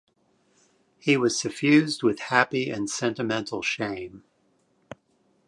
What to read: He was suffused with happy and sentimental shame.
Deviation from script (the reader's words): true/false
false